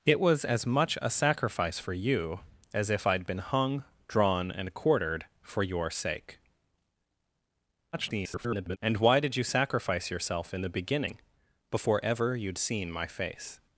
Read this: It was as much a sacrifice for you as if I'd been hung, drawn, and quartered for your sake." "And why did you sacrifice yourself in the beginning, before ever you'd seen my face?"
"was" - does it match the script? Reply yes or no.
yes